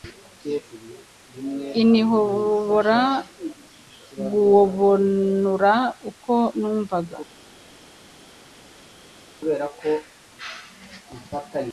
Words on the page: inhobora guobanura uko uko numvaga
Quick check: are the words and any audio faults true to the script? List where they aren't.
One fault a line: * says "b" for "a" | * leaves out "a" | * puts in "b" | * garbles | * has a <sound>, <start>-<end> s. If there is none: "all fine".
* leaves out "uko"